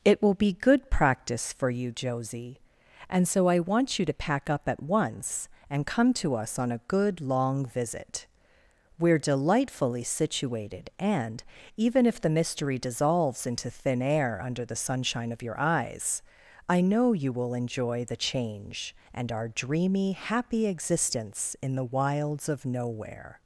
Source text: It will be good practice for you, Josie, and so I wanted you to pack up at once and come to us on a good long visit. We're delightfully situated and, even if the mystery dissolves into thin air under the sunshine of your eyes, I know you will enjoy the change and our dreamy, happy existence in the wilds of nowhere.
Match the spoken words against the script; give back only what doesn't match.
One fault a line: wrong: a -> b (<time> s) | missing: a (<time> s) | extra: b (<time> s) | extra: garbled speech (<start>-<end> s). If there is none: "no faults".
wrong: wanted -> want (3.6 s)